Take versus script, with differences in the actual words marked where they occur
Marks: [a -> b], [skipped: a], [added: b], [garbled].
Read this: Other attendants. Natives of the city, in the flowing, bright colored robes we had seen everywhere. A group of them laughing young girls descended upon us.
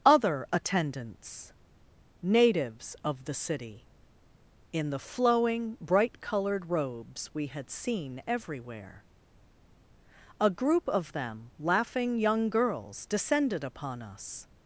Other attendants. Natives of the city, in the flowing, bright colored robes we had seen everywhere. A group of them laughing young girls descended upon us.